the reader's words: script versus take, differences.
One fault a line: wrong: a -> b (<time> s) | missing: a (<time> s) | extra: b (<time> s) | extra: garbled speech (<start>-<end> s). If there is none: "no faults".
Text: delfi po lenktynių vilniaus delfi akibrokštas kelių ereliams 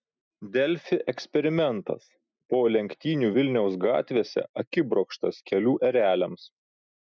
extra: eksperimentas (1.1 s)
wrong: delfi -> gatvėse (3.8 s)